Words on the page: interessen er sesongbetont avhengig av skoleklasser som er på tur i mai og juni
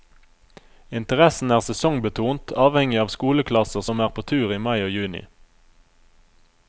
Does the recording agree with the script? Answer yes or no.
yes